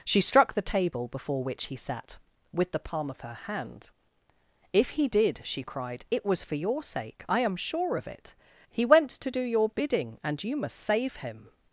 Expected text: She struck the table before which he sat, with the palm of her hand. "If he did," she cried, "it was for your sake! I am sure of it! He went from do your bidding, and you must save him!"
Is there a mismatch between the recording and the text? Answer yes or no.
yes